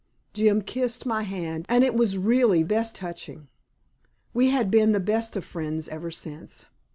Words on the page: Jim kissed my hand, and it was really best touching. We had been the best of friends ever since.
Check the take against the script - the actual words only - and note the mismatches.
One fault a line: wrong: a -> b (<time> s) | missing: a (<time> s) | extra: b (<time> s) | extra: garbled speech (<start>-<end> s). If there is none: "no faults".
no faults